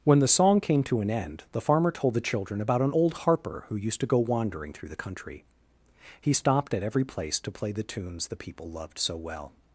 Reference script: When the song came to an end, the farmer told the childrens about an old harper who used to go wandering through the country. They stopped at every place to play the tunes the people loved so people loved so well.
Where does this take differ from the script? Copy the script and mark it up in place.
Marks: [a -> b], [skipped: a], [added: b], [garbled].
When the song came to an end, the farmer told the [childrens -> children] about an old harper who used to go wandering through the country. [They -> He] stopped at every place to play the tunes the people loved so [skipped: people loved so] well.